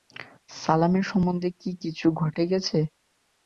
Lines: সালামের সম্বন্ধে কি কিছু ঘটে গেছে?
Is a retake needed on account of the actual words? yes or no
no